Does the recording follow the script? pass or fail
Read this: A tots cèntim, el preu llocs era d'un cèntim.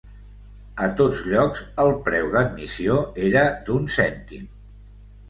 fail